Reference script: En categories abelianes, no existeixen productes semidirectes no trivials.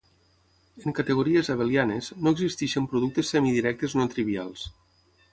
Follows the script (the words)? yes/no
yes